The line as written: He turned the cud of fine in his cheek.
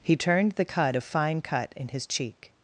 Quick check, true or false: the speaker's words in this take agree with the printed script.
false